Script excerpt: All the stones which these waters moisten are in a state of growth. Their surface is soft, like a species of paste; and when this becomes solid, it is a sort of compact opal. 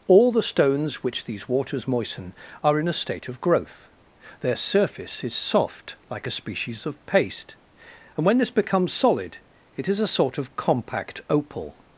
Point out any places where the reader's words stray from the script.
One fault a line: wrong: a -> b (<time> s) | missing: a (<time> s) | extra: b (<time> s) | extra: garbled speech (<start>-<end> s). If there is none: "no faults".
no faults